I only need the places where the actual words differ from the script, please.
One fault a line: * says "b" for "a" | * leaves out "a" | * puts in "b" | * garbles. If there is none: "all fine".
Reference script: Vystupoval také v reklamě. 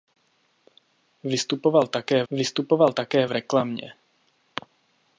* puts in "vystupoval také"